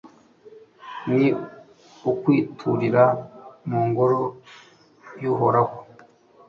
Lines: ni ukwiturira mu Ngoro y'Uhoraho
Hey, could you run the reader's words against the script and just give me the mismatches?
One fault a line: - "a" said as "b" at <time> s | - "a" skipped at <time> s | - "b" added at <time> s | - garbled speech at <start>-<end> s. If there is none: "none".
none